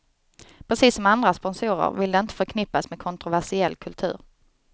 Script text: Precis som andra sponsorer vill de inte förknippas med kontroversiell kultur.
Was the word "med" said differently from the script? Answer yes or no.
no